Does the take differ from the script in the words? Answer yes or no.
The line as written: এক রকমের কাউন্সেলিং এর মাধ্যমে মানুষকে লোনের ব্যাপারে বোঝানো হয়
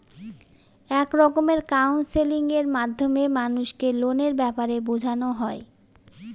no